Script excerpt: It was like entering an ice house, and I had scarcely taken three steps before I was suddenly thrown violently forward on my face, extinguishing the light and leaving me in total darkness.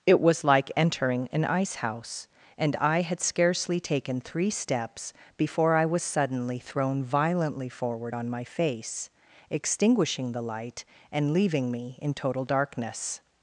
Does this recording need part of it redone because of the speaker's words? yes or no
no